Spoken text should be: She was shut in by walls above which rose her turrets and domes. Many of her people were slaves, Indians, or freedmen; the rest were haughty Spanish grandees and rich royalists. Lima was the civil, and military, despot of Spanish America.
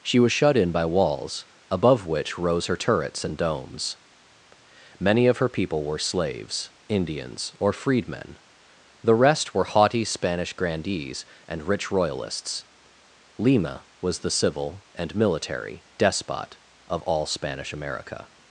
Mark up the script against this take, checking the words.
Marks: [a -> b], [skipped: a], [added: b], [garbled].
She was shut in by walls above which rose her turrets and domes. Many of her people were slaves, Indians, or freedmen; the rest were haughty Spanish grandees and rich royalists. Lima was the civil, and military, despot of [added: all] Spanish America.